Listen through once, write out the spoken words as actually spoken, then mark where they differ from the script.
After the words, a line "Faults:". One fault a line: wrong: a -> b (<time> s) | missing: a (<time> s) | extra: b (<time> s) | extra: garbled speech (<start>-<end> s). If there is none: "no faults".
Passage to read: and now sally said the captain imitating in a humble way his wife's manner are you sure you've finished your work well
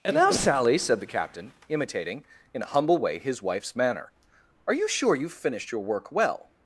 and now sally said the captain imitating in a humble way his wife's manner are you sure you've finished your work well
Faults:
no faults